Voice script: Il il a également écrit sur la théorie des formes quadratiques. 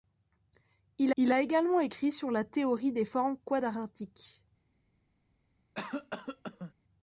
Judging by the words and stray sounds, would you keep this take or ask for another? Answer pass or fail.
fail